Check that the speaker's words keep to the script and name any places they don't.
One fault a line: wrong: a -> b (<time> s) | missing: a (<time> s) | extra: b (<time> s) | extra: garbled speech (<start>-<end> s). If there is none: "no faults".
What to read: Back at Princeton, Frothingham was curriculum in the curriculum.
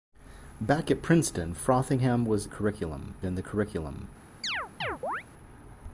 no faults